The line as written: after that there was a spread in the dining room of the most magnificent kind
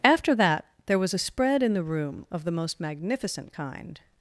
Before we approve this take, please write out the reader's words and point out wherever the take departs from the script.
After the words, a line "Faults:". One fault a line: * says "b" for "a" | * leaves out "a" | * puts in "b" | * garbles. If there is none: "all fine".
after that there was a spread in the room of the most magnificent kind
Faults:
* leaves out "dining"